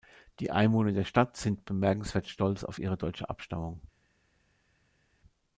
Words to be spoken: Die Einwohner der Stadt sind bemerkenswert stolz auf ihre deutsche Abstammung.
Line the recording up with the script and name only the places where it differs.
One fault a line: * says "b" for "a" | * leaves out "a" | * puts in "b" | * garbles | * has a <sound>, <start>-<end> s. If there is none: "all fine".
all fine